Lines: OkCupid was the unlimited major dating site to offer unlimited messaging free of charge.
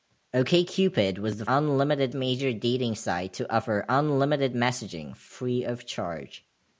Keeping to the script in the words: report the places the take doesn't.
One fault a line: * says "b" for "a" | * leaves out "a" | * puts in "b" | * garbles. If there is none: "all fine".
all fine